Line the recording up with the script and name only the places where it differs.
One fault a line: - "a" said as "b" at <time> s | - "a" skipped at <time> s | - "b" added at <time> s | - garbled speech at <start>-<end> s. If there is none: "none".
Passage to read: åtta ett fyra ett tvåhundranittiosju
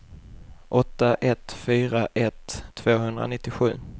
none